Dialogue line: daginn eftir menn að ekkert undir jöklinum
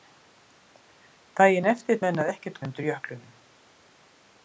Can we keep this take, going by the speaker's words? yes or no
yes